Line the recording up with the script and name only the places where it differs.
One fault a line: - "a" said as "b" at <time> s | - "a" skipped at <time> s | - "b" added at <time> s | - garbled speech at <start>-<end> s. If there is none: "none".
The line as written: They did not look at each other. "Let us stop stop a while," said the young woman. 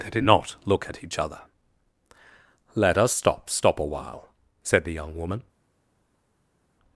none